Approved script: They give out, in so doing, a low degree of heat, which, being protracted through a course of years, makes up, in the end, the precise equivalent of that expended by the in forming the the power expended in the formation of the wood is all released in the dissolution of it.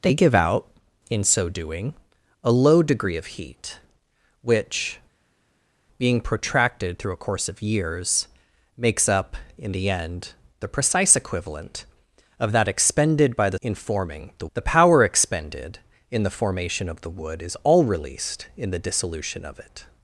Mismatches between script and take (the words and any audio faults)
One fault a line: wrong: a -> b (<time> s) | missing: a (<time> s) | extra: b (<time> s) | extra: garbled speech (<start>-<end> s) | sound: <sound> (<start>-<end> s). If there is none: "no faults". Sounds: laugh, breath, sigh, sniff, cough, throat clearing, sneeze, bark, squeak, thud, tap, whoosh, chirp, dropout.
no faults